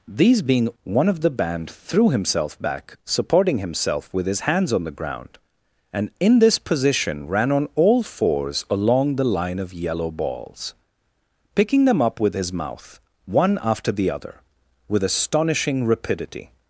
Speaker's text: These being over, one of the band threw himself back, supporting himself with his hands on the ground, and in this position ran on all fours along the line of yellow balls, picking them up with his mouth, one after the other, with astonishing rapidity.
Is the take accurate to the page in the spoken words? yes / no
no